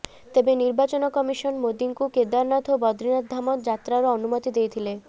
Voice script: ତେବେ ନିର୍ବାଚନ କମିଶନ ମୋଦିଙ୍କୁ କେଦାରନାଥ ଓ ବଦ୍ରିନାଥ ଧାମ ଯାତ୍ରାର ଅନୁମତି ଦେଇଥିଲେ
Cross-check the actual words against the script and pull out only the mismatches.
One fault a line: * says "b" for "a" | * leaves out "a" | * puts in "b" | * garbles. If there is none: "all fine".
all fine